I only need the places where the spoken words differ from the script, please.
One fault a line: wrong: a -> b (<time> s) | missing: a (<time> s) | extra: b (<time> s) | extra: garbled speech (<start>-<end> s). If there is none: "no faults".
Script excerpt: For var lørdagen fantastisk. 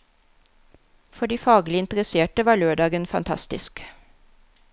extra: de faglig interesserte (1.3 s)